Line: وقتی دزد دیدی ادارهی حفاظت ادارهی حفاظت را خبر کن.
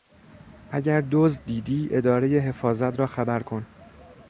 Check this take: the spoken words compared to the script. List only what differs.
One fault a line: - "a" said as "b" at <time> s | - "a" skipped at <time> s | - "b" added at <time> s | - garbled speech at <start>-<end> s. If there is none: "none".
- "وقتی" said as "اگر" at 0.7 s
- "ادارهی حفاظت" skipped at 3.0 s